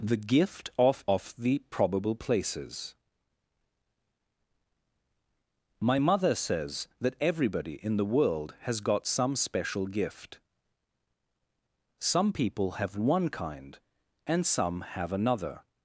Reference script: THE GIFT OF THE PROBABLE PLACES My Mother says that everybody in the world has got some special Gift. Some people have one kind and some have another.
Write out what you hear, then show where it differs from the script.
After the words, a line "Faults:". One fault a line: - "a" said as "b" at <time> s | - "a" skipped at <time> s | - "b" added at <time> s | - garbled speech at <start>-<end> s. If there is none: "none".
THE GIFT OF OF THE PROBABLE PLACES My Mother says that everybody in the world has got some special Gift. Some people have one kind and some have another.
Faults:
- "OF" added at 1.1 s